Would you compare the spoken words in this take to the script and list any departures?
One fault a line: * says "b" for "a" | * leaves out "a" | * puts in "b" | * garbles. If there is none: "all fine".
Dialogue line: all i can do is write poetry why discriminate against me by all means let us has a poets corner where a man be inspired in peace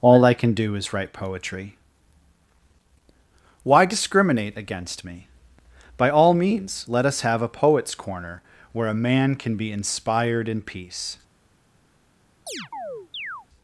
* says "have" for "has"
* puts in "can"